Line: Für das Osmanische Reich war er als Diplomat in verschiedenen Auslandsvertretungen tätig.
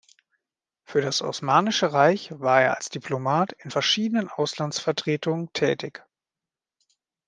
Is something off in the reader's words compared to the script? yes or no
no